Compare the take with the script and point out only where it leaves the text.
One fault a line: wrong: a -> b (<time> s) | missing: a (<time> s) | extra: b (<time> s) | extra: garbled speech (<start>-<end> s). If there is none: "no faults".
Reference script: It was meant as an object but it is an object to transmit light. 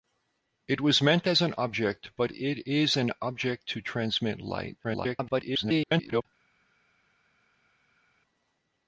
extra: garbled speech (4.8-6.3 s)